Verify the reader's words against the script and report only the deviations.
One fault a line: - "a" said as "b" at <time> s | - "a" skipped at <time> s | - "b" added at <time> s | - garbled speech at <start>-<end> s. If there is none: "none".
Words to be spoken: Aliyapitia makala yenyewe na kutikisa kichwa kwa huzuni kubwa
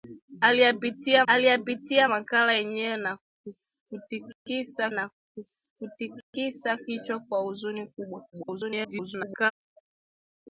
- "aliyapitia" added at 1.3 s
- "na kutikisa" added at 4.9 s
- garbled speech at 8.3-9.5 s